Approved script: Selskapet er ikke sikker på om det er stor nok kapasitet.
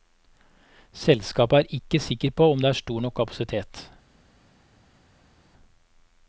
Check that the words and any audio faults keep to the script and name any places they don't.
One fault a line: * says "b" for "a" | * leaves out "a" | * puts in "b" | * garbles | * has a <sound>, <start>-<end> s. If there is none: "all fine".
all fine